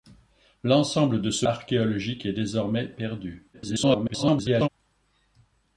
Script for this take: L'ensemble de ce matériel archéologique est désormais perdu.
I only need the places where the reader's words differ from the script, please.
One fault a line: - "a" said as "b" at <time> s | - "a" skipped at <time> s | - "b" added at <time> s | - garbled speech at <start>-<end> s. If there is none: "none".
- "matériel" skipped at 1.4 s
- garbled speech at 3.5-4.7 s